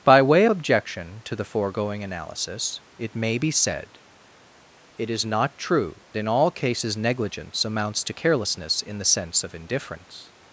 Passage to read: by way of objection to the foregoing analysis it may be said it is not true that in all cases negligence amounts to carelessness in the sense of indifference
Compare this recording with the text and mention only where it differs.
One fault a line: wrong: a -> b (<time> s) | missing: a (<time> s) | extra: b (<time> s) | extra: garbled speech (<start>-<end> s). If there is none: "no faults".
missing: of (0.5 s)
missing: that (6.0 s)